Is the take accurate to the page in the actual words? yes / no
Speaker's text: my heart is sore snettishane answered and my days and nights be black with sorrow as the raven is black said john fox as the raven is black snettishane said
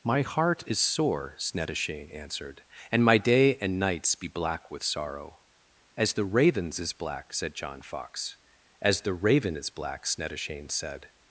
no